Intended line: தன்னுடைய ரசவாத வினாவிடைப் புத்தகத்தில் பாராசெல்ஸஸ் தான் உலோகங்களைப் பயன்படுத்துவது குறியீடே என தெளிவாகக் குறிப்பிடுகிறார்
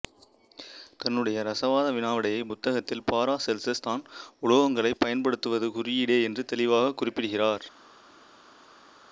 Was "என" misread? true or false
true